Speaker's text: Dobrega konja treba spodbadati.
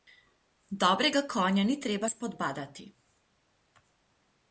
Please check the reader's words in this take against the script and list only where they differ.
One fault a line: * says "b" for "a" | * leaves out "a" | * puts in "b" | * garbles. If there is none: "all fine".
* puts in "ni"